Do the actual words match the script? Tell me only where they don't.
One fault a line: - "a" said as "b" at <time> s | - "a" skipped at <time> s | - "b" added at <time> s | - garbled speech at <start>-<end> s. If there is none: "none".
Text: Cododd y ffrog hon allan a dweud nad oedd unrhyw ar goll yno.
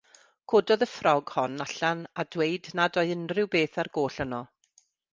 - "beth" added at 3.6 s